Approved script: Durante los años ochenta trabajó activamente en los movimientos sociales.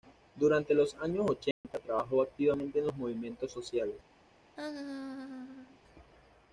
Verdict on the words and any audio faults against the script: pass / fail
fail